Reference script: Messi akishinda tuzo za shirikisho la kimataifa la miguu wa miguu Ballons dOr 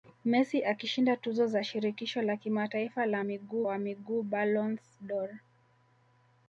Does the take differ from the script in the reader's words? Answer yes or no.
no